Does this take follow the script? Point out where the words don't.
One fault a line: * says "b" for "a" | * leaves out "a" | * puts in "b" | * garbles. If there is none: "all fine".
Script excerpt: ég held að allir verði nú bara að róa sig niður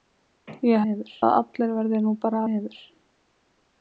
* says "niður" for "held"
* leaves out "að róa sig"